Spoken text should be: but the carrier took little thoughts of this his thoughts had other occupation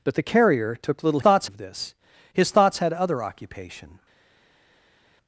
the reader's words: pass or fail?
pass